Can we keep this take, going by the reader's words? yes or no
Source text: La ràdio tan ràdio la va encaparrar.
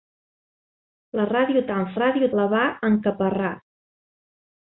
yes